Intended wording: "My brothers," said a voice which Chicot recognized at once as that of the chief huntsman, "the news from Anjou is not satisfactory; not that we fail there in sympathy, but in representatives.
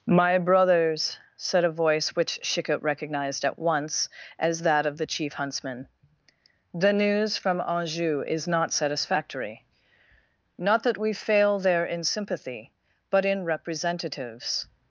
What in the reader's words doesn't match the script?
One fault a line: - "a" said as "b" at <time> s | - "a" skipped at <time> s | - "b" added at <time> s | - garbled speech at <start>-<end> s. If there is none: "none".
none